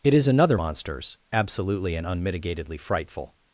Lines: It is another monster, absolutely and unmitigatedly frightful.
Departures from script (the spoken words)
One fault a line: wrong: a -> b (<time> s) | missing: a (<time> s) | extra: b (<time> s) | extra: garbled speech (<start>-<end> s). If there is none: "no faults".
wrong: monster -> monsters (0.5 s)